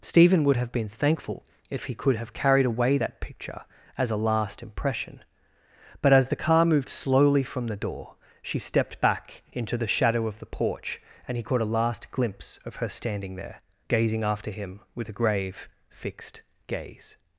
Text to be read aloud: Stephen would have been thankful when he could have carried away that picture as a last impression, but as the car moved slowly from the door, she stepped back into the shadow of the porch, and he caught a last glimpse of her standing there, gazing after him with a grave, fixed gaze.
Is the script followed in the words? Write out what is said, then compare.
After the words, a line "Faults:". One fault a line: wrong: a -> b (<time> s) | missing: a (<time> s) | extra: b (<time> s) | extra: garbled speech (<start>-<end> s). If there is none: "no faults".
Stephen would have been thankful if he could have carried away that picture as a last impression, but as the car moved slowly from the door, she stepped back into the shadow of the porch, and he caught a last glimpse of her standing there, gazing after him with a grave, fixed gaze.
Faults:
wrong: when -> if (1.7 s)